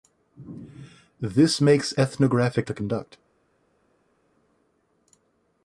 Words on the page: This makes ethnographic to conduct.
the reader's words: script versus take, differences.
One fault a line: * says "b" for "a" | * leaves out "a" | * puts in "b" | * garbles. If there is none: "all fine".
all fine